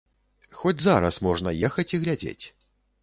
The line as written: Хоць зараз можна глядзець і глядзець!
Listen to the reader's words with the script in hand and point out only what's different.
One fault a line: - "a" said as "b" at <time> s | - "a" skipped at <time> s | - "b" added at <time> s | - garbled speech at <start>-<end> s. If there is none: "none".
- "глядзець" said as "ехаць" at 1.7 s